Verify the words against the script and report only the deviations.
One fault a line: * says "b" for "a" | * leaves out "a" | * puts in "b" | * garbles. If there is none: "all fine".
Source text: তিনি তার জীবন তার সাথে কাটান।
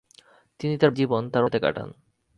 all fine